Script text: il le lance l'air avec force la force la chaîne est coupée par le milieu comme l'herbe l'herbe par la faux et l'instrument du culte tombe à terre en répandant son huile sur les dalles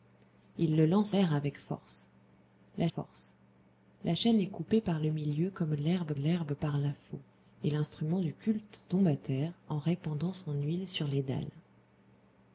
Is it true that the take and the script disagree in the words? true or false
false